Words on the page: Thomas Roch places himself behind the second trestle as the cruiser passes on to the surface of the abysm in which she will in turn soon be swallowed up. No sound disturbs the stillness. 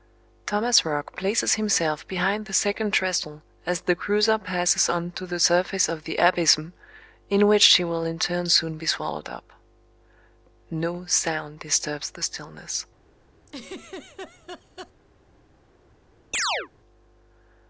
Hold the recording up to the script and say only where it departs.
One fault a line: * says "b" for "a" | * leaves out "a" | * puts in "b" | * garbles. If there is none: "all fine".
all fine